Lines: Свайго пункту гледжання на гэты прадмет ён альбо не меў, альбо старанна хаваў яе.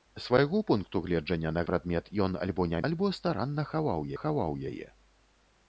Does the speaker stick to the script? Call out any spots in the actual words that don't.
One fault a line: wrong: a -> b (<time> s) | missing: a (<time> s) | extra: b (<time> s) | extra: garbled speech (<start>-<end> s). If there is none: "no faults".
missing: гэты (1.6 s)
missing: меў (2.8 s)
extra: хаваў (4.2 s)